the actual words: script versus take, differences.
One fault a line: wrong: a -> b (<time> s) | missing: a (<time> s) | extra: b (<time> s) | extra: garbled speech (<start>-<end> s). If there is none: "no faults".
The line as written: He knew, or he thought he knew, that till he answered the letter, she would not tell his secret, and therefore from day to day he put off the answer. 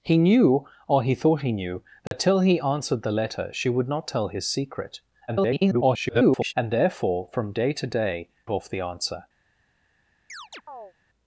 extra: garbled speech (5.3-6.5 s)
missing: he put (8.3 s)